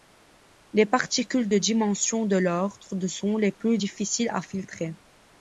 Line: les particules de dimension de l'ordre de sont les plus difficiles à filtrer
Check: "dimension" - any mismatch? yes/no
no